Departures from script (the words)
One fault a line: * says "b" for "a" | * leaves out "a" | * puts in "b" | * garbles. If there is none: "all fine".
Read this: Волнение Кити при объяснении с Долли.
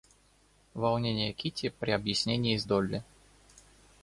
all fine